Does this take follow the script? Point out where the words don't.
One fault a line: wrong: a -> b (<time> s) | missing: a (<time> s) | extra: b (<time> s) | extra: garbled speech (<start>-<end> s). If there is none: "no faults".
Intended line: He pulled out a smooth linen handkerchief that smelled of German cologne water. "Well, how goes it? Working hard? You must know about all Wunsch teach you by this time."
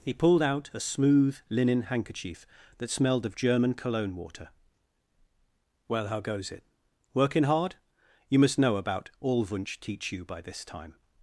no faults